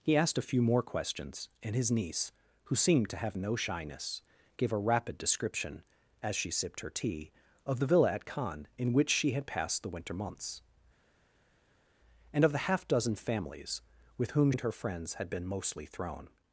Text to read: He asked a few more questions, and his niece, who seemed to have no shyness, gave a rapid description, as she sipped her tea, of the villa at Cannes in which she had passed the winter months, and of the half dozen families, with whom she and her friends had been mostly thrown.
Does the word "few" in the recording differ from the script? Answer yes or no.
no